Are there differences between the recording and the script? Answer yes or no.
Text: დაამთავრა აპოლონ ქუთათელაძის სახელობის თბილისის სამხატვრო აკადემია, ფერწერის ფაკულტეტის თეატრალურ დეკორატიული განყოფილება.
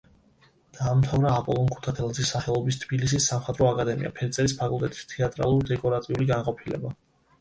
no